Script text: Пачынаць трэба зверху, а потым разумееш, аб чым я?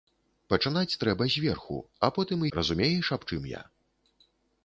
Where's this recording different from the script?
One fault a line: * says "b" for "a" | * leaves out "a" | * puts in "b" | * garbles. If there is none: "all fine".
all fine